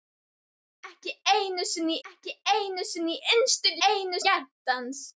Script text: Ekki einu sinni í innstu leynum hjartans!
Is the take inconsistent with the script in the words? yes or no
yes